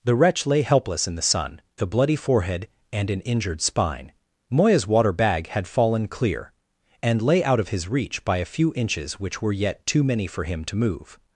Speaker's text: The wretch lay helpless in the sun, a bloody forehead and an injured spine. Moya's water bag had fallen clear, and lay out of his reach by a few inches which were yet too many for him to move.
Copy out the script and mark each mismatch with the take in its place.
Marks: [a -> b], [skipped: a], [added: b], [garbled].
The wretch lay helpless in the sun, a bloody forehead and an injured spine. Moya's water bag had fallen clear, and lay out of his reach by a few inches which were yet too many for him to move.